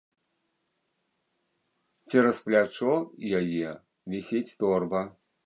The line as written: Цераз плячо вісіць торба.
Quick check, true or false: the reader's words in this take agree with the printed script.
false